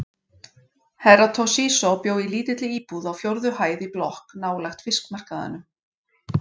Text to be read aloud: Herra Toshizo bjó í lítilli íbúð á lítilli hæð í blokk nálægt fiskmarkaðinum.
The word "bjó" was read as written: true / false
true